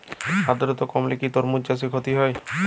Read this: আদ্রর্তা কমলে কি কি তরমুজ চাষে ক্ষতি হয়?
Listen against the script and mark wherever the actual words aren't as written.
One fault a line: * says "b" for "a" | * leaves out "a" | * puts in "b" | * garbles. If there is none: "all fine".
* leaves out "কি"